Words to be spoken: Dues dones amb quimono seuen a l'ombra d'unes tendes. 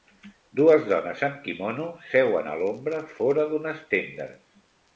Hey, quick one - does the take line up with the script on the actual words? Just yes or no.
no